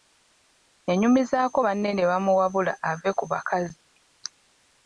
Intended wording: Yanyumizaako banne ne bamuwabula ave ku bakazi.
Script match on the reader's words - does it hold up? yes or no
yes